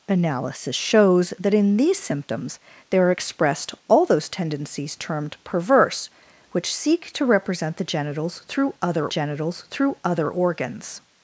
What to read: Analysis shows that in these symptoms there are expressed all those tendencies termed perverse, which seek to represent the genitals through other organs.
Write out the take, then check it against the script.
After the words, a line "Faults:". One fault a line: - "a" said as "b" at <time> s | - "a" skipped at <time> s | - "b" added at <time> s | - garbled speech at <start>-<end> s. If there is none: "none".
Analysis shows that in these symptoms there are expressed all those tendencies termed perverse, which seek to represent the genitals through other genitals through other organs.
Faults:
- "genitals through other" added at 9.1 s